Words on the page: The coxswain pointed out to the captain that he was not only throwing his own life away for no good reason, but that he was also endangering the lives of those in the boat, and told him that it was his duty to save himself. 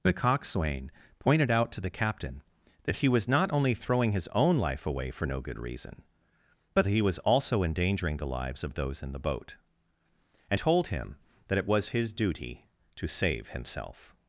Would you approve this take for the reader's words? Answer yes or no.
yes